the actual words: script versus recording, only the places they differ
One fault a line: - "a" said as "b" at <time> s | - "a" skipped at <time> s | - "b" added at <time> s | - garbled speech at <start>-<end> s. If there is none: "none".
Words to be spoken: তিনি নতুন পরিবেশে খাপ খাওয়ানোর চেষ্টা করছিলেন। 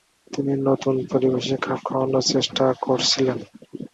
none